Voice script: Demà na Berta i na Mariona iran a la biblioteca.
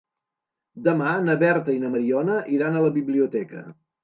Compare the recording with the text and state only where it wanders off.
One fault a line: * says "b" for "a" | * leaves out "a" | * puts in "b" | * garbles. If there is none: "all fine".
all fine